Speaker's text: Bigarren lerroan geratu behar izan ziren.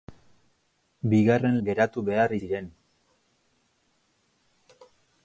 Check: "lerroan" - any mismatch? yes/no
yes